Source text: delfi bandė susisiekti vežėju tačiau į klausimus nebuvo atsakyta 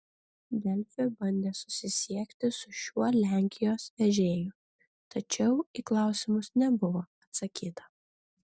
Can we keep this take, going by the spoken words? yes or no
no